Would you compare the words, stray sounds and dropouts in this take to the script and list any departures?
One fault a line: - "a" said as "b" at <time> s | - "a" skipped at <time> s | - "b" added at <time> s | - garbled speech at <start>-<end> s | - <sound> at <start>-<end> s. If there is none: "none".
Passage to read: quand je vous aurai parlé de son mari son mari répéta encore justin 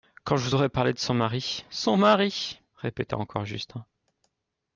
none